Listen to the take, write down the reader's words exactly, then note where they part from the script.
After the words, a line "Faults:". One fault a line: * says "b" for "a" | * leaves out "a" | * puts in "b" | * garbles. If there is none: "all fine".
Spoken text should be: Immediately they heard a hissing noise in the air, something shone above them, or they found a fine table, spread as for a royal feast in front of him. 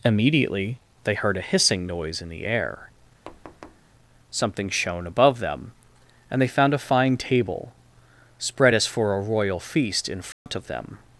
Immediately they heard a hissing noise in the air, something shone above them, and they found a fine table, spread as for a royal feast in front of them.
Faults:
* says "and" for "or"
* says "them" for "him"